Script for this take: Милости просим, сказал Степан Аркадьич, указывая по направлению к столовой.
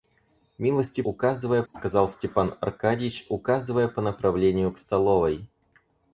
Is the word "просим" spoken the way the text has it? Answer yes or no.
no